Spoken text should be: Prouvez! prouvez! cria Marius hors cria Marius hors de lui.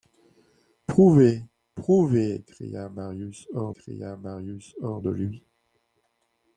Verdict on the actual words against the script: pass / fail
pass